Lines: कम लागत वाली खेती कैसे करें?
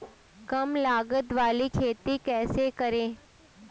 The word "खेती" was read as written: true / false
true